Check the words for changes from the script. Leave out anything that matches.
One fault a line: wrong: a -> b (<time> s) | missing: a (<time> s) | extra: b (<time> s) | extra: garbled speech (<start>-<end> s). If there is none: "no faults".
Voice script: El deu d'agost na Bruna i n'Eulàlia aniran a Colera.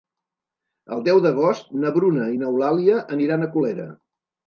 no faults